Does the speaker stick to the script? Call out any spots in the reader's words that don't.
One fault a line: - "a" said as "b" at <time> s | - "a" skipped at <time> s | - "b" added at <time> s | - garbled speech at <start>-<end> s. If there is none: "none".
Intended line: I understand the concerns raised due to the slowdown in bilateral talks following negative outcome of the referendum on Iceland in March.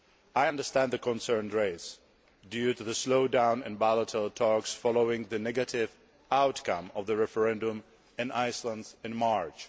- "the" added at 5.2 s
- "on" said as "in" at 8.2 s